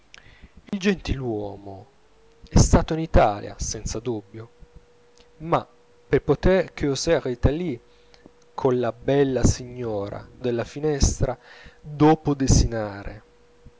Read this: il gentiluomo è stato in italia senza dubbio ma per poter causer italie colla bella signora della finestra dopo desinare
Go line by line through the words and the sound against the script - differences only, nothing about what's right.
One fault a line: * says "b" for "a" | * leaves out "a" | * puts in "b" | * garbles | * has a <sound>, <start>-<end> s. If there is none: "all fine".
* has a dropout, 0.7-0.7 s